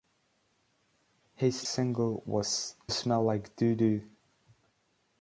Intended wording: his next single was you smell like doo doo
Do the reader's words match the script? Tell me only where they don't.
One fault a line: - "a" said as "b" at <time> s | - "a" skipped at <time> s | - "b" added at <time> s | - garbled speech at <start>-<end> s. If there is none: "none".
- "next" skipped at 1.7 s
- "you" skipped at 2.7 s